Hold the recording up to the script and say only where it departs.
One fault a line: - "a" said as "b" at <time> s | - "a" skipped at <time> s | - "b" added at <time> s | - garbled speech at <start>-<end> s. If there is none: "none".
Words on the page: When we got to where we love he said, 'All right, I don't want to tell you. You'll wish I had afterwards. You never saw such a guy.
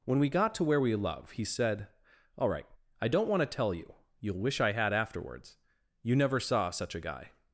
none